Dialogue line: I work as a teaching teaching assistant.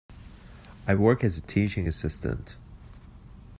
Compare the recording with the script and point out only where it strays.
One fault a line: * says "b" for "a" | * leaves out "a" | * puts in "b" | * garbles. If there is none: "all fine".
* leaves out "teaching"